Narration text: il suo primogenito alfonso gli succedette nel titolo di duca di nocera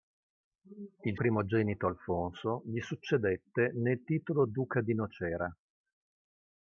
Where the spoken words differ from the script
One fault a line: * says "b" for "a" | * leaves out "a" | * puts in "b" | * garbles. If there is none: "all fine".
* leaves out "suo"
* leaves out "di"